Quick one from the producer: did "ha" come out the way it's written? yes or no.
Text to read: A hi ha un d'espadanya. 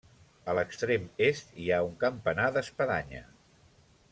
yes